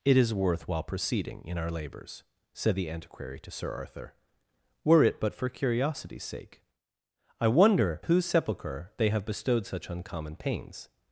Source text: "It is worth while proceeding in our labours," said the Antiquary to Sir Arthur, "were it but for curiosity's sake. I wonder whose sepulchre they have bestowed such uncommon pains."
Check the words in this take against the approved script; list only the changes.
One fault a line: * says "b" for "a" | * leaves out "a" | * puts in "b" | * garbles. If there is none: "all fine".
all fine